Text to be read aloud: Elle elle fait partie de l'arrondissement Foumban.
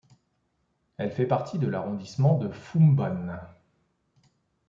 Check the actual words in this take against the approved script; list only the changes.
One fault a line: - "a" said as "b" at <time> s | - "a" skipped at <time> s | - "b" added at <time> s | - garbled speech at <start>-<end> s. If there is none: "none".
- "elle" skipped at 1.1 s
- "de" added at 2.4 s